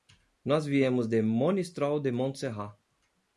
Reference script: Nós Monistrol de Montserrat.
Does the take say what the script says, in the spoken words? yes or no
no